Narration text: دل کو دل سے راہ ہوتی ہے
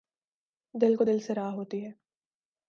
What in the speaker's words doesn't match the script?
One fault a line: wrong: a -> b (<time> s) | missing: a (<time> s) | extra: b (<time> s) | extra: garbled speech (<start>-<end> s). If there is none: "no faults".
no faults